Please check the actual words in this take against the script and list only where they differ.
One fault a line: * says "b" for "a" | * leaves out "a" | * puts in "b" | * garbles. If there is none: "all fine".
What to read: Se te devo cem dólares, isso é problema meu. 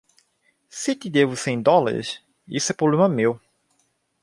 all fine